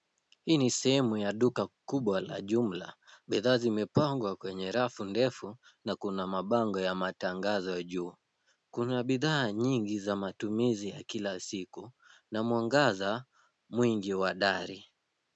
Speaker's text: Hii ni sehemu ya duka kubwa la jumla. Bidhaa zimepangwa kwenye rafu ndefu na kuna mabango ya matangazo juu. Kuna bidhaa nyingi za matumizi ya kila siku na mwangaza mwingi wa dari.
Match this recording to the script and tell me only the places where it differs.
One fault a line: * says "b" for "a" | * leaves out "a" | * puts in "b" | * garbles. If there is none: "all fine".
all fine